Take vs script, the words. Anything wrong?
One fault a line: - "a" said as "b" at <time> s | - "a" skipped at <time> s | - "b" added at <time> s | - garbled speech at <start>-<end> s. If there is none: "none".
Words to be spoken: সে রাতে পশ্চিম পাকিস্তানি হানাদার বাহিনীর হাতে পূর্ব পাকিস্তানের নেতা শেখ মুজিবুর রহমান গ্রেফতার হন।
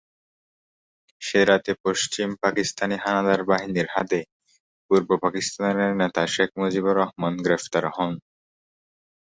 none